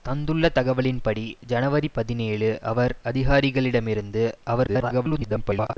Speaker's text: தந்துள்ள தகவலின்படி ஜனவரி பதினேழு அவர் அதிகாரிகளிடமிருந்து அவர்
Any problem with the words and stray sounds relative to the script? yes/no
yes